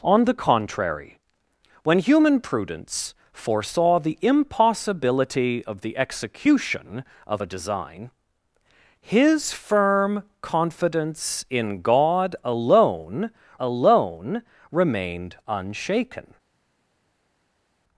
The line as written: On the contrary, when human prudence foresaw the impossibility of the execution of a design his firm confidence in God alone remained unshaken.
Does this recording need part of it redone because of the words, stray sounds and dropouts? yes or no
yes